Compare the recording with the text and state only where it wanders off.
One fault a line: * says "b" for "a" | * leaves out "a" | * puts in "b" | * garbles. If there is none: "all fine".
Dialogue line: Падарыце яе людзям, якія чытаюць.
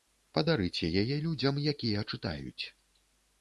all fine